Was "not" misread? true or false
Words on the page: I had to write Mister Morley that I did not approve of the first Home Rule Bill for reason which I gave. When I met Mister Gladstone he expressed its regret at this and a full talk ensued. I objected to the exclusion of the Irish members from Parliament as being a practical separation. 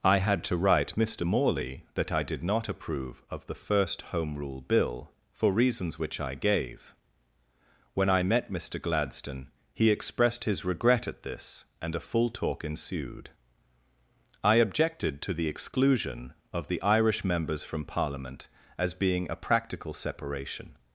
false